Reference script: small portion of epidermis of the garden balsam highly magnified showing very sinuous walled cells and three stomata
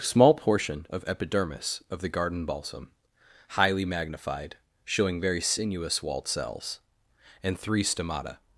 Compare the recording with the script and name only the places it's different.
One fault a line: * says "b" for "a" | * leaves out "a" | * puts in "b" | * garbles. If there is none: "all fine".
all fine